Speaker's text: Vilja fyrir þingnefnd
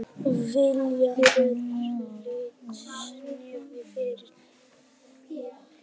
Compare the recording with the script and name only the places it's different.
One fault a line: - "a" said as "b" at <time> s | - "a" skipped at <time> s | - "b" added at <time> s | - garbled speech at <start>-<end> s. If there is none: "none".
none